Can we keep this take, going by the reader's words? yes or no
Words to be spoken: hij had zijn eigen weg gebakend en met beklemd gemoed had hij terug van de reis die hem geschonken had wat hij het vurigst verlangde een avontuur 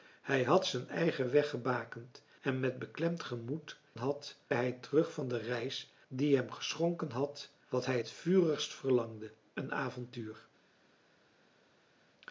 yes